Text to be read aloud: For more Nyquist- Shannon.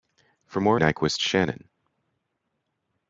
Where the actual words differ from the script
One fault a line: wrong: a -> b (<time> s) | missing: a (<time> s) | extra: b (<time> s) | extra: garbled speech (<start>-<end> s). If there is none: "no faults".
no faults